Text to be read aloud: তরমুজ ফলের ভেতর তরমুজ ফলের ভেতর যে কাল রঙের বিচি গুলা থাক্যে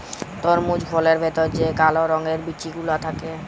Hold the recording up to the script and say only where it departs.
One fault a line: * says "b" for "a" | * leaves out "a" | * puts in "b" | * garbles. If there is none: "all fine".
* leaves out "তরমুজ ফলের ভেতর"